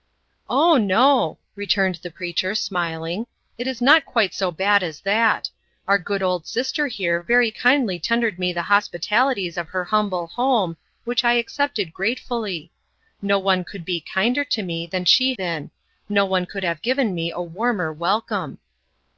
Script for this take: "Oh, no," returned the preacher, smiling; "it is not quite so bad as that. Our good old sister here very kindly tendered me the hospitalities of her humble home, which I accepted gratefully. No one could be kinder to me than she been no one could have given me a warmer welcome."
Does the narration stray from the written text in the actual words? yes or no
no